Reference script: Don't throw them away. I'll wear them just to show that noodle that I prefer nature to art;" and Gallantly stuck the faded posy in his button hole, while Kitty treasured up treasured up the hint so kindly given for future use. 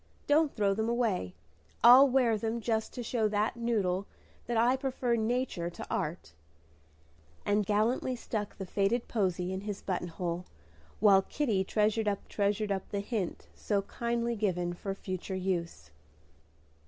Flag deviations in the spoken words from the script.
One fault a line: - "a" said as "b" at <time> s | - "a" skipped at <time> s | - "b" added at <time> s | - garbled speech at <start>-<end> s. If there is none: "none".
none